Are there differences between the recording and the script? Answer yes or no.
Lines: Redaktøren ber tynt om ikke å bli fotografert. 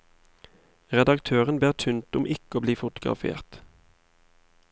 no